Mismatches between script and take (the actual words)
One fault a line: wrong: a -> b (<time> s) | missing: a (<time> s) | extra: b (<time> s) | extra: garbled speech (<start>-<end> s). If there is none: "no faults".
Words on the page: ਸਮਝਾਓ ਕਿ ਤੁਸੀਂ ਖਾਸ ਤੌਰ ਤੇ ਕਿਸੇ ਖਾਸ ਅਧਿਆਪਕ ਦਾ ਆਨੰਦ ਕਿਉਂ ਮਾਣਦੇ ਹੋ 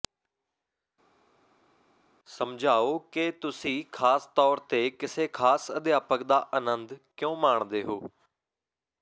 no faults